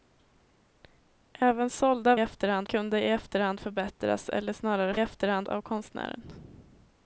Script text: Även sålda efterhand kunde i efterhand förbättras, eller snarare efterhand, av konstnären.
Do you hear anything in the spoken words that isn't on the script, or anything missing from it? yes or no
no